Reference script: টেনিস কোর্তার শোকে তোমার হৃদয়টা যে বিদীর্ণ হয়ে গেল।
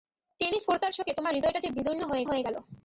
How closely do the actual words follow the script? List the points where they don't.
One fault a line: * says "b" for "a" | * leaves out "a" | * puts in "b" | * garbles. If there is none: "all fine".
* puts in "হয়ে"